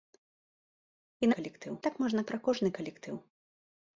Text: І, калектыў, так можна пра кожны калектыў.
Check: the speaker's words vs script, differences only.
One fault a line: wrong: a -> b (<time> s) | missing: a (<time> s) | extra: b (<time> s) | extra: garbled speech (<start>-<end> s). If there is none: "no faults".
no faults